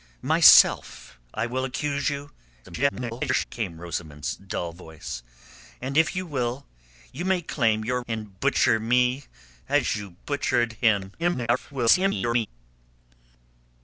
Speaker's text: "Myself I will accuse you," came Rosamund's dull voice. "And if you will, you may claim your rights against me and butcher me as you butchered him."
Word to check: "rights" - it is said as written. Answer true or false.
false